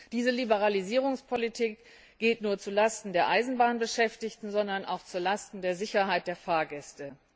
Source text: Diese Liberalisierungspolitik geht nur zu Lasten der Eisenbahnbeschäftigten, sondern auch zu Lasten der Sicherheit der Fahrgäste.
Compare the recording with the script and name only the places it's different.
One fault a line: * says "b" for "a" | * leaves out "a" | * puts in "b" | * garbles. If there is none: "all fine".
all fine